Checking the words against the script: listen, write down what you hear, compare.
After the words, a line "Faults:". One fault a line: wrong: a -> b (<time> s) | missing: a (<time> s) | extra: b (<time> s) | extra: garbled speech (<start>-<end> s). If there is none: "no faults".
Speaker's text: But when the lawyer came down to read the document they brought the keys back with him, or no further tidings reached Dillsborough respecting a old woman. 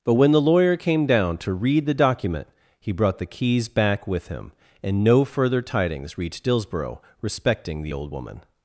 But when the lawyer came down to read the document he brought the keys back with him, and no further tidings reached Dillsborough respecting the old woman.
Faults:
wrong: they -> he (2.8 s)
wrong: or -> and (4.8 s)
wrong: a -> the (7.8 s)